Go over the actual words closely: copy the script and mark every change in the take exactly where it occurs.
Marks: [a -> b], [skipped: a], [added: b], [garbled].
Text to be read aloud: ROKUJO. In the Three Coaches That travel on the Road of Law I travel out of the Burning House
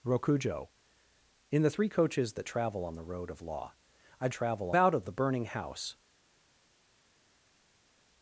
ROKUJO. In the Three Coaches That travel on the Road of Law I travel out of the Burning House